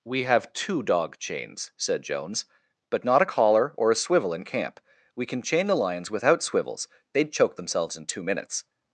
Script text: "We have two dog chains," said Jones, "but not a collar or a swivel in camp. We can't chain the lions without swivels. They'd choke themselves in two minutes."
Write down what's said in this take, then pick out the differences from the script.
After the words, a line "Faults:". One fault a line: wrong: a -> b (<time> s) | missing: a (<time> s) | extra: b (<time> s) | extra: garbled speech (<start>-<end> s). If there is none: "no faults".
"We have two dog chains," said Jones, "but not a collar or a swivel in camp. We can chain the lions without swivels. They'd choke themselves in two minutes."
Faults:
wrong: can't -> can (5.2 s)